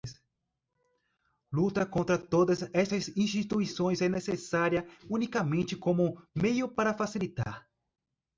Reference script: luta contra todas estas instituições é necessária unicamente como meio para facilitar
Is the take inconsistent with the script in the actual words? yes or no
no